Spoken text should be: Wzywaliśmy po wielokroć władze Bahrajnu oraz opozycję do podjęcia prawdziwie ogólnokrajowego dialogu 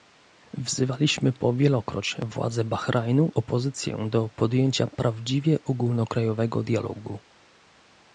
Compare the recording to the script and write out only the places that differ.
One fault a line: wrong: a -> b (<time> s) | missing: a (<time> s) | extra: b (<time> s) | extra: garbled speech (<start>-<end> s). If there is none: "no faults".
missing: oraz (3.3 s)